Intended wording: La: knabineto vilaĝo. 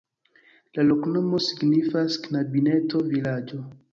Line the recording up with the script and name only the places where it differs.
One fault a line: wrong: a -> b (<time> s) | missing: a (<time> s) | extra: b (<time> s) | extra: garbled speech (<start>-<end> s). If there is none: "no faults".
extra: loknomo signifas (0.9 s)